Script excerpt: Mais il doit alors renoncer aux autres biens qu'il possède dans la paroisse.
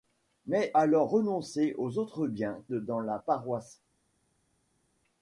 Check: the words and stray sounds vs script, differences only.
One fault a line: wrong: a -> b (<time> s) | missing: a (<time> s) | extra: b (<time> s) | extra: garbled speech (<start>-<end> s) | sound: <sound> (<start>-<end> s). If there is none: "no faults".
missing: il doit (0.7 s)
missing: qu'il possède (2.6 s)